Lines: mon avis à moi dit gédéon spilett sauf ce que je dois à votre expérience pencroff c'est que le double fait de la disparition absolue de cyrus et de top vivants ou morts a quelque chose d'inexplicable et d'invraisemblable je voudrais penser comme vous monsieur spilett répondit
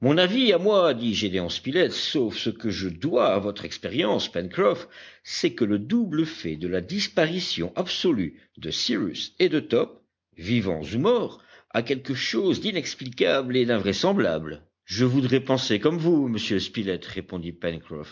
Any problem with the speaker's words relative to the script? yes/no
no